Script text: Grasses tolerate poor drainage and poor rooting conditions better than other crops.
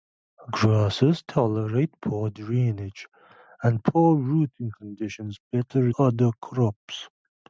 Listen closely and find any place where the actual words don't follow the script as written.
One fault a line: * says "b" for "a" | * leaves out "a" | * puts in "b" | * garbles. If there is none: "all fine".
* leaves out "than"